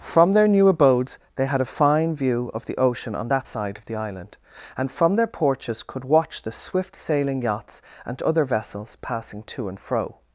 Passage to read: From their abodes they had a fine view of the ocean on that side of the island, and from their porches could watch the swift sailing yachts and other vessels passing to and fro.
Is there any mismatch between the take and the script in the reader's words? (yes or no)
yes